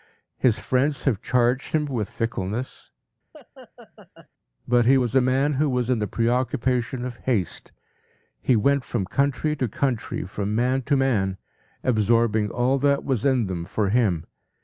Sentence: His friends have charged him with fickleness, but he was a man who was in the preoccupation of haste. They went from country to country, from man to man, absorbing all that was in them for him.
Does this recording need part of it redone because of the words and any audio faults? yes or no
yes